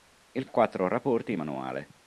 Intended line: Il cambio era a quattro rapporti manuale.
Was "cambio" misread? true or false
true